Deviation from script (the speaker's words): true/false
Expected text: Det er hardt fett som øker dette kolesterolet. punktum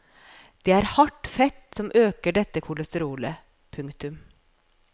false